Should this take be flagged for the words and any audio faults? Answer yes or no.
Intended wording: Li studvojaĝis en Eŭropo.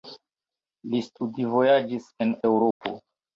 yes